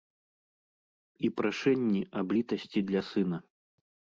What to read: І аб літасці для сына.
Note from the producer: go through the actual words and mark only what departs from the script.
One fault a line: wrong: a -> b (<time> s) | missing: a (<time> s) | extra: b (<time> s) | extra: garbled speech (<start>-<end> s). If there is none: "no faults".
extra: прашэнні (1.4 s)